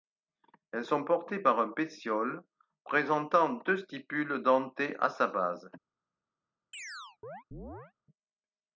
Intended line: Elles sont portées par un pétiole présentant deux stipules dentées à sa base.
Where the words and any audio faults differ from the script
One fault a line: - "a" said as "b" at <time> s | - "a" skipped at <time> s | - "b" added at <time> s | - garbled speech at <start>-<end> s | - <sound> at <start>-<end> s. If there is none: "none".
- chirp at 6.7-7.9 s